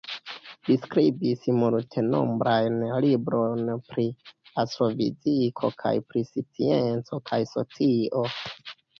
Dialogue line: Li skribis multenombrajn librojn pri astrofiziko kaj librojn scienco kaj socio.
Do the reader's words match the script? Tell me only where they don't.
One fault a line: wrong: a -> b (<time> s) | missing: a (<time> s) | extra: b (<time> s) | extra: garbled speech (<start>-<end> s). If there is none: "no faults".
wrong: librojn -> pri (6.1 s)